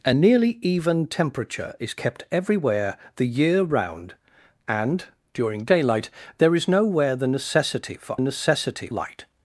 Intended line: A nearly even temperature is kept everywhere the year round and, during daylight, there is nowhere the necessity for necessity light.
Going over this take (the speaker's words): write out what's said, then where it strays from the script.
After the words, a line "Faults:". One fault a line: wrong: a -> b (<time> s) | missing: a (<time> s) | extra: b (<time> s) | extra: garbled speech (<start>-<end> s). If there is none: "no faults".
A nearly even temperature is kept everywhere the year round and, during daylight, there is nowhere the necessity for necessity light.
Faults:
no faults